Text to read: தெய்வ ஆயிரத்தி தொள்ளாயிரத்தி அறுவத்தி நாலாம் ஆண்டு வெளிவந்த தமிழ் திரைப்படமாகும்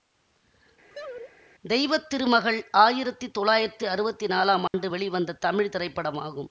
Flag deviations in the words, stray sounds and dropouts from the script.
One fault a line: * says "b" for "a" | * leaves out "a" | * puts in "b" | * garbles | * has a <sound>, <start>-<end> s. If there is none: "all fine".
* has a laugh, 0.9-1.3 s
* puts in "திருமகள்"
* has a dropout, 4.7-4.7 s